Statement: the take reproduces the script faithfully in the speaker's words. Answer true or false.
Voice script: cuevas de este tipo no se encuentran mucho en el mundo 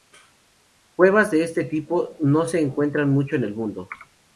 true